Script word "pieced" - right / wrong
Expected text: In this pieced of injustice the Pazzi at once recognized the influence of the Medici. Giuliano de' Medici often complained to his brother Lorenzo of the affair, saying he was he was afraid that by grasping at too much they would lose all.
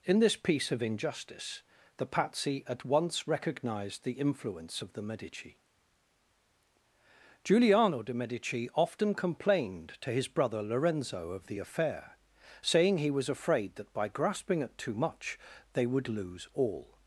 wrong